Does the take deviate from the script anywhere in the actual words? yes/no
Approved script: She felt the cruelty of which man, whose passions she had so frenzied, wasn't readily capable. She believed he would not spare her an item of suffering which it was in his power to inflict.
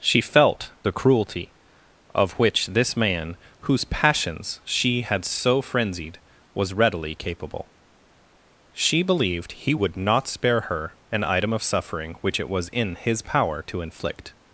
yes